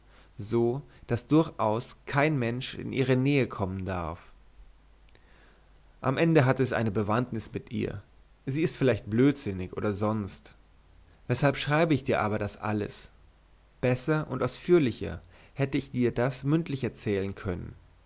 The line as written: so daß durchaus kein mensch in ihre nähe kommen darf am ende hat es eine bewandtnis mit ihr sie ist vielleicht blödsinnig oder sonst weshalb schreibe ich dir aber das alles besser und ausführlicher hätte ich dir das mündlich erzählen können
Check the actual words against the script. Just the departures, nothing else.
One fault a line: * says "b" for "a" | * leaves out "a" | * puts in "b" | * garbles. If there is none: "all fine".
all fine